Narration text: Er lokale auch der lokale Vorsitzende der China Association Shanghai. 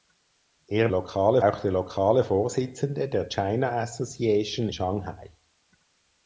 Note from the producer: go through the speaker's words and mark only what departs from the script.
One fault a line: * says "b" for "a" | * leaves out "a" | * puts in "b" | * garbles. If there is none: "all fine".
all fine